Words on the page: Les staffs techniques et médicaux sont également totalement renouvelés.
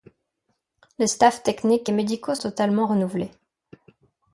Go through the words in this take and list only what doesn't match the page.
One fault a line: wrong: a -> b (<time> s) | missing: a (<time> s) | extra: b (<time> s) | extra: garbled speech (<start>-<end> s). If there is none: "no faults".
missing: sont également (2.4 s)